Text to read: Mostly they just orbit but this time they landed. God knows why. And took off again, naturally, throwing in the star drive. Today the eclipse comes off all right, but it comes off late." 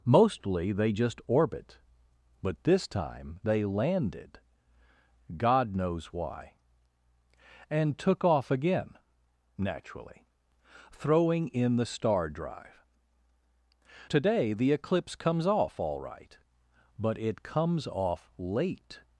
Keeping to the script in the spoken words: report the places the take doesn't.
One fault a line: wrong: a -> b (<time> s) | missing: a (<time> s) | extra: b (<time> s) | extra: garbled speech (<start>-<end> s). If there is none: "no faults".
no faults